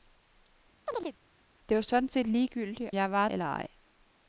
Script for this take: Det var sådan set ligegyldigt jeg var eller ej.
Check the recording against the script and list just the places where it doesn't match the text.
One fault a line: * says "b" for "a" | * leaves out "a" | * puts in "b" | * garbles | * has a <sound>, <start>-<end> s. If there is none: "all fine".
* has a chirp, 0.9-1.2 s